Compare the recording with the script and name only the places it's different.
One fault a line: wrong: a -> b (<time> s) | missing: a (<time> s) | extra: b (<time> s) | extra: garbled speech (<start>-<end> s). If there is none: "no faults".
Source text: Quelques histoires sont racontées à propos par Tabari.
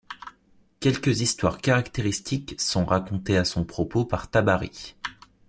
extra: caractéristiques (1.6 s)
extra: son (3.5 s)